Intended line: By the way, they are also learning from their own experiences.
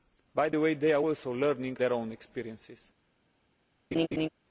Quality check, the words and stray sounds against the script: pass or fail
fail